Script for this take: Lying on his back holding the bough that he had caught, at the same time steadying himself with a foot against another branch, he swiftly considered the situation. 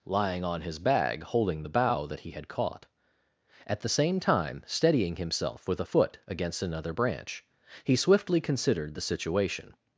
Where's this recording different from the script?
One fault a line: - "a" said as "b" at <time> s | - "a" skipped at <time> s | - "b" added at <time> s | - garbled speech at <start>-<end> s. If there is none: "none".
- "back" said as "bag" at 0.8 s